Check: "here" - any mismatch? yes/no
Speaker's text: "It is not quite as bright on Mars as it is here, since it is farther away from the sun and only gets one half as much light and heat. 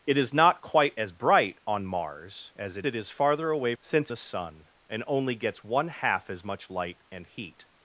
yes